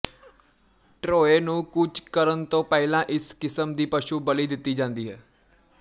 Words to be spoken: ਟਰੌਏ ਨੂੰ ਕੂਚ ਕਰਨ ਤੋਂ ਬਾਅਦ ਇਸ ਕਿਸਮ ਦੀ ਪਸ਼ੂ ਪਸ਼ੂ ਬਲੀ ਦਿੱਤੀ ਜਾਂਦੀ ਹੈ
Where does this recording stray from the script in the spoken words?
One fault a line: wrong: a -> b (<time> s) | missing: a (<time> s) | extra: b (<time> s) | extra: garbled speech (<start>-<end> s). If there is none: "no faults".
wrong: ਬਾਅਦ -> ਪਹਿਲਾਂ (2.6 s)
missing: ਪਸ਼ੂ (4.2 s)